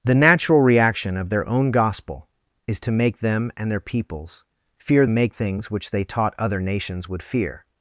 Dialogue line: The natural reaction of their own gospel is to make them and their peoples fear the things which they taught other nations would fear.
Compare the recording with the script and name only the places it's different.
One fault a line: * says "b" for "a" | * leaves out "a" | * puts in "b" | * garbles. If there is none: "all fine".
* says "make" for "the"